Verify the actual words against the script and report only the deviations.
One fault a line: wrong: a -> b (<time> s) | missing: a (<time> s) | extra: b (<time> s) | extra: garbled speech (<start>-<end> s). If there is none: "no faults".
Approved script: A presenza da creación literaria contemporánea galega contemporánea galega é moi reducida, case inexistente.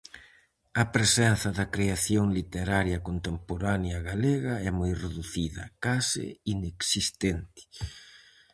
missing: contemporánea galega (4.5 s)